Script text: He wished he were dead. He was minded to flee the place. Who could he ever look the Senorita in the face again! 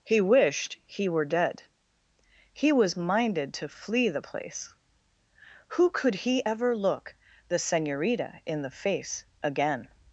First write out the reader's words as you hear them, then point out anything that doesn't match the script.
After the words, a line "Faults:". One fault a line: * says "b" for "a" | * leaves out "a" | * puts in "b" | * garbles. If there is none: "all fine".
He wished he were dead. He was minded to flee the place. Who could he ever look the Senorita in the face again!
Faults:
all fine